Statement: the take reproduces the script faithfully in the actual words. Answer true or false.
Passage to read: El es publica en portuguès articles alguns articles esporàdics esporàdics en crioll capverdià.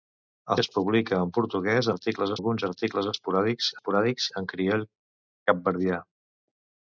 true